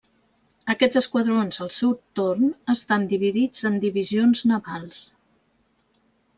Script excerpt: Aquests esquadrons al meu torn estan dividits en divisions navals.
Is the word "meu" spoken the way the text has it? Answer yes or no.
no